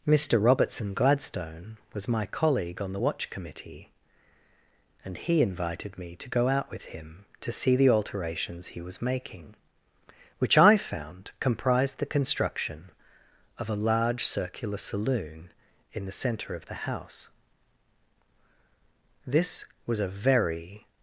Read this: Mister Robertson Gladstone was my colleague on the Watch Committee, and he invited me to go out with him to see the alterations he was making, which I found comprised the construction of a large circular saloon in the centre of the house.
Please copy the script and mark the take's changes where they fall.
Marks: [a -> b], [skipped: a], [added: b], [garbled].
Mister Robertson Gladstone was my colleague on the Watch Committee, and he invited me to go out with him to see the alterations he was making, which I found comprised the construction of a large circular saloon in the centre of the house. [added: This was a very]